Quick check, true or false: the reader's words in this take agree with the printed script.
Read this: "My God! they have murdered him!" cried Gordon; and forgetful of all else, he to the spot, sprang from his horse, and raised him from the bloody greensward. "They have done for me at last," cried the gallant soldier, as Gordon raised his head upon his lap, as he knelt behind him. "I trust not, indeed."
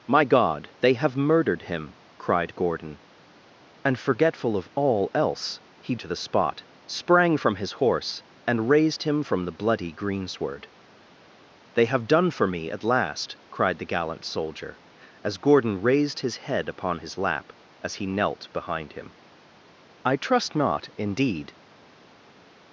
true